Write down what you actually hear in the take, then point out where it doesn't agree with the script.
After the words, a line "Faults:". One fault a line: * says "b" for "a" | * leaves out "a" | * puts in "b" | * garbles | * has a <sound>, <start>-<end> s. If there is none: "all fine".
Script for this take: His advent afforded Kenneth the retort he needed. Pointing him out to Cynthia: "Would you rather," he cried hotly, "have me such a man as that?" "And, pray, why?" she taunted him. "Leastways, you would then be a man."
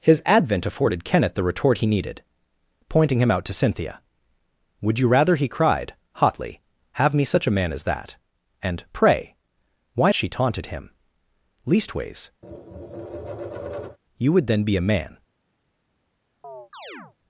His advent afforded Kenneth the retort he needed. Pointing him out to Cynthia: "Would you rather," he cried hotly, "have me such a man as that?" "And, pray, why?" she taunted him. "Leastways, you would then be a man."
Faults:
* has a tap, 12.4-14.0 s
* has a chirp, 16.4-17.2 s